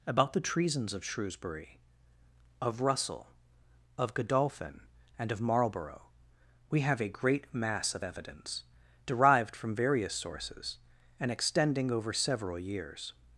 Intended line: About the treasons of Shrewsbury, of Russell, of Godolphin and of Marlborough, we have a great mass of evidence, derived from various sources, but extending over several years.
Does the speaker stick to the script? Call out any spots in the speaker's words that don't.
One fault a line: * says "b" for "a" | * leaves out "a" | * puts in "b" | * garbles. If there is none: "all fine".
* says "and" for "but"